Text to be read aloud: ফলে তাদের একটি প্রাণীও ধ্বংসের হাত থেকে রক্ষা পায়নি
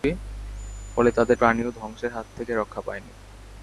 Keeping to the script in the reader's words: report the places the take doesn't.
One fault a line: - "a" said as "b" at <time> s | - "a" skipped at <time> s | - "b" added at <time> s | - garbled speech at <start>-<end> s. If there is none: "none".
- "একটি" skipped at 1.4 s